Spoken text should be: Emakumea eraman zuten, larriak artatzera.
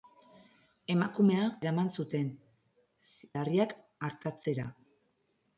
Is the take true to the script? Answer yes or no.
yes